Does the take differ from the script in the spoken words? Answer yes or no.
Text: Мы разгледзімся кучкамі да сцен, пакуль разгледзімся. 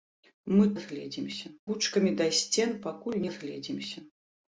no